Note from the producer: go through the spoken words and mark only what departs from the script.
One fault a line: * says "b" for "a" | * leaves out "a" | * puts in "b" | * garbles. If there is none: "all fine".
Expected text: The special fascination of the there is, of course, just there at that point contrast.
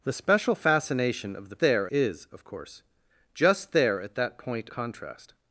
all fine